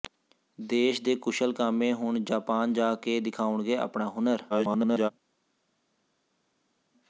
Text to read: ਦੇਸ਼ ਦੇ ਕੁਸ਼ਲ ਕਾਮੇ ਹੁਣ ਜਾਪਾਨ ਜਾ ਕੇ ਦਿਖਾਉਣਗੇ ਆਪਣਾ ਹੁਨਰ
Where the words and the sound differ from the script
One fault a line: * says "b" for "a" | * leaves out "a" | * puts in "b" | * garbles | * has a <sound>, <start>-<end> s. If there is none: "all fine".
* garbles